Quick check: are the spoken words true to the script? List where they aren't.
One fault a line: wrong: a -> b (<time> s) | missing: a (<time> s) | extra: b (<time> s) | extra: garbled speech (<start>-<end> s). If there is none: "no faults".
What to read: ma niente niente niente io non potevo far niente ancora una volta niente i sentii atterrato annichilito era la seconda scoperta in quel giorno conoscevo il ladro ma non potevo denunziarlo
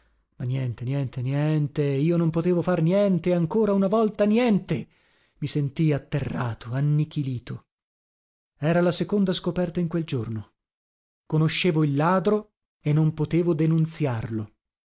wrong: ma -> e (12.8 s)